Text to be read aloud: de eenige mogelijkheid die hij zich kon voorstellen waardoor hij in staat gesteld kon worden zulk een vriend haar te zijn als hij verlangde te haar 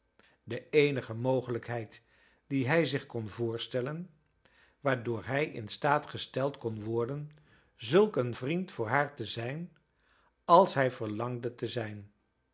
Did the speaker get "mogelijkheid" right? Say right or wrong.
right